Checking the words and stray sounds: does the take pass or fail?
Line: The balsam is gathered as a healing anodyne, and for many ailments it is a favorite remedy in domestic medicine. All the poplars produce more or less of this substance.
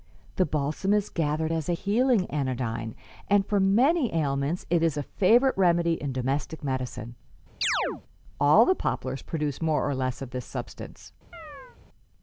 fail